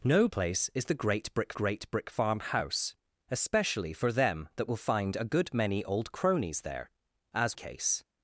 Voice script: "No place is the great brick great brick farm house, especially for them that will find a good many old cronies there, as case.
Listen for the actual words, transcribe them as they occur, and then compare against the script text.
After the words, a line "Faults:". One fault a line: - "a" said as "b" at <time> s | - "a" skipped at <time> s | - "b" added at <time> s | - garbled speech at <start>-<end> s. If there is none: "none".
"No place is the great brick great brick farm house, especially for them that will find a good many old cronies there, as case.
Faults:
none